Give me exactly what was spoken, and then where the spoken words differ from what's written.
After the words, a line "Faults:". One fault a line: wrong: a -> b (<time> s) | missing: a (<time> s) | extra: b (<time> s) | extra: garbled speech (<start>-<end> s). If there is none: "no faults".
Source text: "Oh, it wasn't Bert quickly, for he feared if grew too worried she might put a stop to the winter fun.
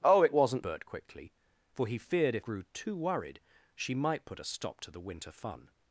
"Oh, it wasn't Bert quickly, for he feared if grew too worried she might put a stop to the winter fun.
Faults:
no faults